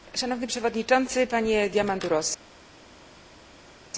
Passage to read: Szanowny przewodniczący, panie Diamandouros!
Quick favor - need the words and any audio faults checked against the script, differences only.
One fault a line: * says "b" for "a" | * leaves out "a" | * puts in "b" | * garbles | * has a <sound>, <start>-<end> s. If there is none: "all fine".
all fine